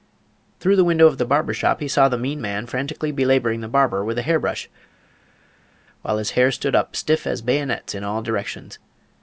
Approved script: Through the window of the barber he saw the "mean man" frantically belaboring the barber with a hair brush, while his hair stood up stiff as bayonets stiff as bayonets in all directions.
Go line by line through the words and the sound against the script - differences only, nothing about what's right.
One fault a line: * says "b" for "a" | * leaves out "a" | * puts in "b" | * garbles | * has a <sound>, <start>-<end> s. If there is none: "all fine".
* puts in "shop"
* leaves out "stiff as bayonets"